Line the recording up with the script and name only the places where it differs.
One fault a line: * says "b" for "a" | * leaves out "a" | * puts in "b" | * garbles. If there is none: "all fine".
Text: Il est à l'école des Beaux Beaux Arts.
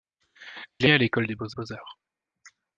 all fine